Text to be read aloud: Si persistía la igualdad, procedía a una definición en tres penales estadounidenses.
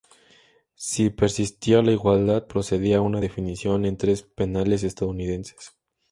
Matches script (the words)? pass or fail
pass